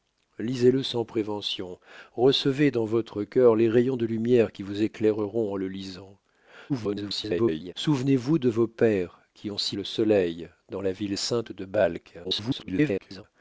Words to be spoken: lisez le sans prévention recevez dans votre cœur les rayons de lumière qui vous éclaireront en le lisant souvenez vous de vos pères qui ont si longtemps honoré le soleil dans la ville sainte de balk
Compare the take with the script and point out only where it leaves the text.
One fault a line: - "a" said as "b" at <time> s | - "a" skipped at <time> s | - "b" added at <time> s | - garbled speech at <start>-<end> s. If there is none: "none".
- garbled speech at 6.7-7.7 s
- "longtemps honoré" skipped at 9.8 s
- garbled speech at 12.2-13.2 s